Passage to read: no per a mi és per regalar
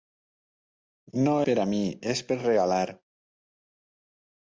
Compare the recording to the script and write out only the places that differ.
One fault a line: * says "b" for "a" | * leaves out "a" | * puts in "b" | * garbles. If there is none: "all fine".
all fine